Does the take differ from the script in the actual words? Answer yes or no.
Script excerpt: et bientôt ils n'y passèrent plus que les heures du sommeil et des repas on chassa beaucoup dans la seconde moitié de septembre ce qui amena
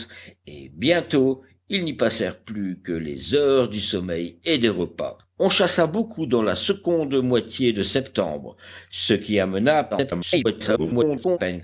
yes